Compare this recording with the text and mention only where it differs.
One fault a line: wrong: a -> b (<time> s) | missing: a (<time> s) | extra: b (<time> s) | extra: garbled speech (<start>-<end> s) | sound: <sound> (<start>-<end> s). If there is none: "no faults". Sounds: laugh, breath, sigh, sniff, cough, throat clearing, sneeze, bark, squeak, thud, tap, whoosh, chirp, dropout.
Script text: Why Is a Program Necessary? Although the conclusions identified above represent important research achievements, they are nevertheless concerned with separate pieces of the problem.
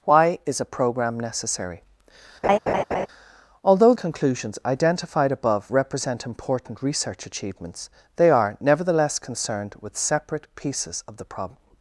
sound: laugh (2.4-3.1 s)
missing: the (3.9 s)